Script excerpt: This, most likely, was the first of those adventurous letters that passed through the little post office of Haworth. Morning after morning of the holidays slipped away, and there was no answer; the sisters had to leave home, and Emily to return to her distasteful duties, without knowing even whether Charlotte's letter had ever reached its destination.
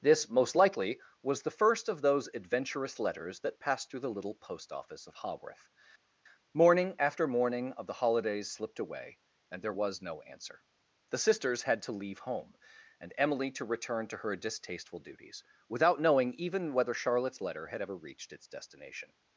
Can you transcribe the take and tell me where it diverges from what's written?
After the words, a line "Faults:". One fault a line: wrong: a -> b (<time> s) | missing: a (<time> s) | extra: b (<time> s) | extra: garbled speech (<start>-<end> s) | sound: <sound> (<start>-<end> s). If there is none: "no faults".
This, most likely, was the first of those adventurous letters that passed through the little post office of Haworth. Morning after morning of the holidays slipped away, and there was no answer; the sisters had to leave home, and Emily to return to her distasteful duties, without knowing even whether Charlotte's letter had ever reached its destination.
Faults:
no faults